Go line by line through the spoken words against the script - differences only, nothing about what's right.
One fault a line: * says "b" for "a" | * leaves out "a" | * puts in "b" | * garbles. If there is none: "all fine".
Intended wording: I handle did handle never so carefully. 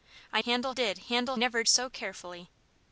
all fine